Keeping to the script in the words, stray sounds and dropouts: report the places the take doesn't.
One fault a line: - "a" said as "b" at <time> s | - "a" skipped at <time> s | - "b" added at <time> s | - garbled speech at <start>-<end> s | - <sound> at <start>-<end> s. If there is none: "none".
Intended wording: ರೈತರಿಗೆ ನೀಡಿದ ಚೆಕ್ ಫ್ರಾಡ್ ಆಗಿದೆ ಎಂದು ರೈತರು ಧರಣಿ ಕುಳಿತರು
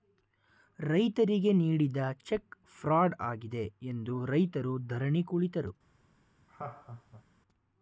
- laugh at 6.5-7.2 s